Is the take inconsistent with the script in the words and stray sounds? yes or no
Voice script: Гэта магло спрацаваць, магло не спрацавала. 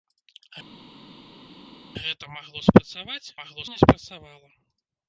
no